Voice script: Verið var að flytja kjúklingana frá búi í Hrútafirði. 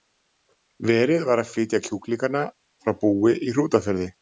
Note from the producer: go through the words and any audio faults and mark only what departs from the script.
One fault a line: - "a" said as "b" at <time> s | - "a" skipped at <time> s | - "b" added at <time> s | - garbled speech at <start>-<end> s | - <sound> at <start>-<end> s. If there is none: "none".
none